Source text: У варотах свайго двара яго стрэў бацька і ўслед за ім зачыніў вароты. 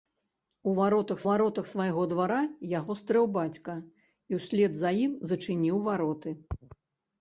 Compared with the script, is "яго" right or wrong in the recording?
right